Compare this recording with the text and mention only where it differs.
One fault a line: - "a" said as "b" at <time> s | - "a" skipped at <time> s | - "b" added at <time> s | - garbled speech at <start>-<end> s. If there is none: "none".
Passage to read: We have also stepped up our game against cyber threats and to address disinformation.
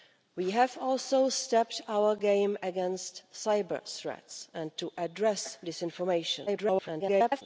- garbled speech at 6.5-7.4 s